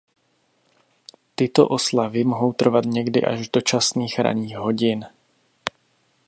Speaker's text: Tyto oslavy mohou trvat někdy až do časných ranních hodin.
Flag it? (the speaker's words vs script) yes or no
no